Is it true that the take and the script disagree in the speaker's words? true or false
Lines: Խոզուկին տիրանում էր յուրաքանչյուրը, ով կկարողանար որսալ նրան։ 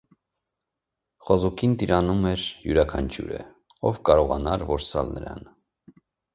false